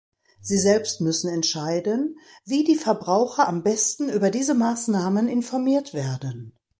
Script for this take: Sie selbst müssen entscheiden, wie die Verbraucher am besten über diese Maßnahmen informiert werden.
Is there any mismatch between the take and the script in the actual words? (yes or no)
no